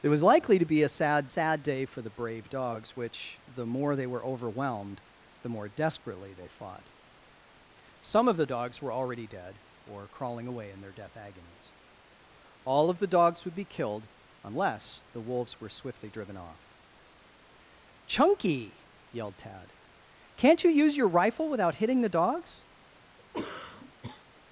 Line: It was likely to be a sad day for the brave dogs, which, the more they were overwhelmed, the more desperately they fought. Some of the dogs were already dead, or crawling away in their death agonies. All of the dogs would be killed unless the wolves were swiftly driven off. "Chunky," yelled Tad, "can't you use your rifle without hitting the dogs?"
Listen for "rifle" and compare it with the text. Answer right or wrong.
right